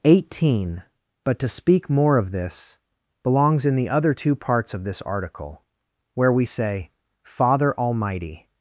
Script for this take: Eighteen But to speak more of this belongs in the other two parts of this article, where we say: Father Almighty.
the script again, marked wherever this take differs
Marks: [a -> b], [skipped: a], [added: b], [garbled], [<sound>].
Eighteen But to speak more of this belongs in the other two parts of this article, where we say: Father Almighty.